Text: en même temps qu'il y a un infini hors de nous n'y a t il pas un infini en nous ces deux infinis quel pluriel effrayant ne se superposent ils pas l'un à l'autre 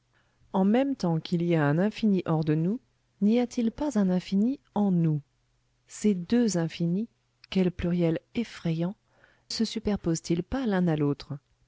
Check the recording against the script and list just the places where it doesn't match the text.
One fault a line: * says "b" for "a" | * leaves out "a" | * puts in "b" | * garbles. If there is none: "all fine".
* leaves out "ne"